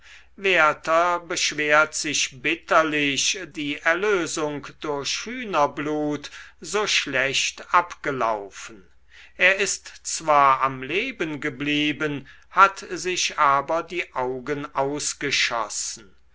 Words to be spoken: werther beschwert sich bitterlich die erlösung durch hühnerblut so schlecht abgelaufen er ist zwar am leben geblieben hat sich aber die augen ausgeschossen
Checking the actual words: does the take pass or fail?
pass